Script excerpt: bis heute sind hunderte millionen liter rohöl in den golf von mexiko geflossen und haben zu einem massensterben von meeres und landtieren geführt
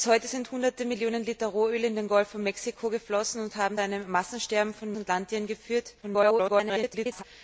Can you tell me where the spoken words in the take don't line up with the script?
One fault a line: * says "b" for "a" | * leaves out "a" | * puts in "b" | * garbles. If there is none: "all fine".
* leaves out "zu"
* leaves out "meeres"
* garbles